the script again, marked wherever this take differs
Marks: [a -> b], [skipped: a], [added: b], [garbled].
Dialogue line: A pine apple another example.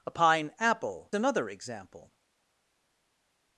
A pine apple another example.